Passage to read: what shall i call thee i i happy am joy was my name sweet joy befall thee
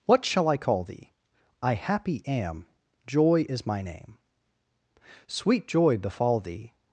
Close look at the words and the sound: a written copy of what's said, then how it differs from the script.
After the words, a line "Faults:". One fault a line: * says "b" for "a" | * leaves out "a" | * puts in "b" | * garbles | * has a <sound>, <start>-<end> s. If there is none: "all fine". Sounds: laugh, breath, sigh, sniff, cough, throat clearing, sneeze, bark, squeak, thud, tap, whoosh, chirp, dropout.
what shall i call thee i happy am joy is my name sweet joy befall thee
Faults:
* leaves out "i"
* says "is" for "was"